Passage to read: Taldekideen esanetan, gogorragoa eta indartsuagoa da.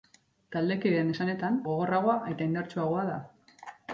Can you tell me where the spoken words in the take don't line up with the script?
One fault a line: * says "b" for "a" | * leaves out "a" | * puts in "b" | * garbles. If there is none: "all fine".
all fine